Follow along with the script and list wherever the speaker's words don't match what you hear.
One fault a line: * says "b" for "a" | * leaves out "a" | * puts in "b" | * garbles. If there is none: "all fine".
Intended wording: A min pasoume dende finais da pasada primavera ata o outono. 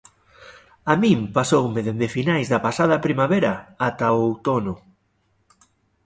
all fine